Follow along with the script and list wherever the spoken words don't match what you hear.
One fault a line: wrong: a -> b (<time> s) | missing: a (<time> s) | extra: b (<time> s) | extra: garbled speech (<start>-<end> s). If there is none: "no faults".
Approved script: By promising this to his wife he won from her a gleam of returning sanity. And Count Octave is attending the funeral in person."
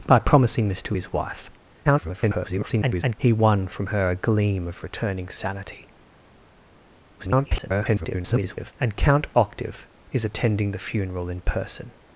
extra: garbled speech (1.8-3.2 s)
extra: garbled speech (7.2-8.7 s)